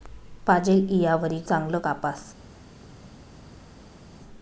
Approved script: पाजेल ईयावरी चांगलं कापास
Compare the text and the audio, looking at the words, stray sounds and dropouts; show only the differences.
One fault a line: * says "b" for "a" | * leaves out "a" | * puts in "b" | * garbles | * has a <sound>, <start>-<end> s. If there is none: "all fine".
all fine